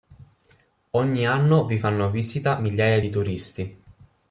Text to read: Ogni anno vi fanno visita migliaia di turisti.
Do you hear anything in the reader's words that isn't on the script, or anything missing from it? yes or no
no